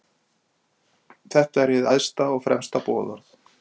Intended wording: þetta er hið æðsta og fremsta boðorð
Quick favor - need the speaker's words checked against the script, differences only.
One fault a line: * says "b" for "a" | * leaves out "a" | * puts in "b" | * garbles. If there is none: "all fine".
all fine